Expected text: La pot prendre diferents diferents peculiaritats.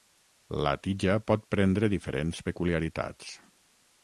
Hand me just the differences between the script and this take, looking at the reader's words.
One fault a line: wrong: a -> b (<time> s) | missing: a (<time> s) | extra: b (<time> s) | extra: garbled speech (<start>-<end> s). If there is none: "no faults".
extra: tija (0.9 s)
missing: diferents (2.4 s)